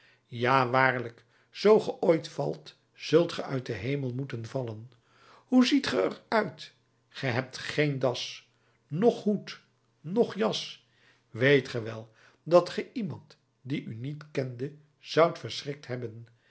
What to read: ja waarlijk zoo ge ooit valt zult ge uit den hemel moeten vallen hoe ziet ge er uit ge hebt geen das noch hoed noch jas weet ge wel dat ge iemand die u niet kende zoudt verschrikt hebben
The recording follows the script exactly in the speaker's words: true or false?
true